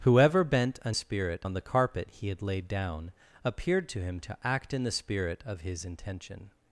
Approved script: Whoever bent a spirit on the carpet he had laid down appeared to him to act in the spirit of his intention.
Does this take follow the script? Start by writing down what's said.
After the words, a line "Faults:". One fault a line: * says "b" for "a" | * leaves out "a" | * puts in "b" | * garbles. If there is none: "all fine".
Whoever bent a spirit on the carpet he had laid down appeared to him to act in the spirit of his intention.
Faults:
all fine